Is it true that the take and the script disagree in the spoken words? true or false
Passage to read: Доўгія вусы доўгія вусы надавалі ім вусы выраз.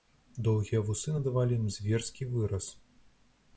true